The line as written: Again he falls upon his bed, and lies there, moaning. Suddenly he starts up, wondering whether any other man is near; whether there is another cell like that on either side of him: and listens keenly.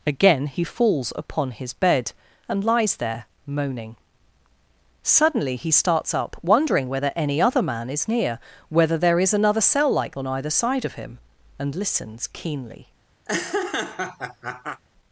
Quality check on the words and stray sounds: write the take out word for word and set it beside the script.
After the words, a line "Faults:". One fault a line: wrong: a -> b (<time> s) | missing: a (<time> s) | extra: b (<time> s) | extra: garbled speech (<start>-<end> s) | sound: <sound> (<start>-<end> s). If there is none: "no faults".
Again he falls upon his bed, and lies there, moaning. Suddenly he starts up, wondering whether any other man is near; whether there is another cell like on either side of him: and listens keenly.
Faults:
missing: that (10.2 s)
sound: laugh (13.3-14.8 s)